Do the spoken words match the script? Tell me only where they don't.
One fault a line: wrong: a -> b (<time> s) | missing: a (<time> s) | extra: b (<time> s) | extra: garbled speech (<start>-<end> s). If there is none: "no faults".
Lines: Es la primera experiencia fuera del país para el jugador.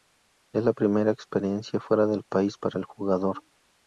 no faults